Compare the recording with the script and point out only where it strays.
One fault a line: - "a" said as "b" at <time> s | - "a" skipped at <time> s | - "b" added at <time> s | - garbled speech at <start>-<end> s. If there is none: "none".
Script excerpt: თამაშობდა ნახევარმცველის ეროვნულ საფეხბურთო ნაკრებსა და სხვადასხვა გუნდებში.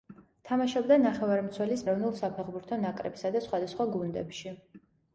none